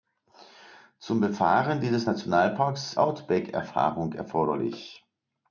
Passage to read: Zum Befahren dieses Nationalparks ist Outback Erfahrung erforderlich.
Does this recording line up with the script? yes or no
no